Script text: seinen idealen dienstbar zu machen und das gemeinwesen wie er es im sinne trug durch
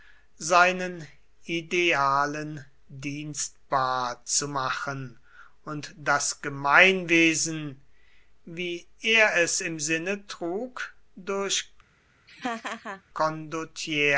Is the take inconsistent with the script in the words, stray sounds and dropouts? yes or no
yes